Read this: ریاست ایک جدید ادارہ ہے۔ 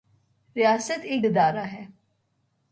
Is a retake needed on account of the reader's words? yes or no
yes